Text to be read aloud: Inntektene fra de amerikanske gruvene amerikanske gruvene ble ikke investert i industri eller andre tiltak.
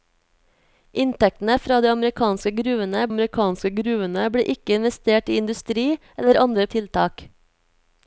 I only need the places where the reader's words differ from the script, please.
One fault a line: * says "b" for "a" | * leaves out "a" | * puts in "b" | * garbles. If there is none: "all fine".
all fine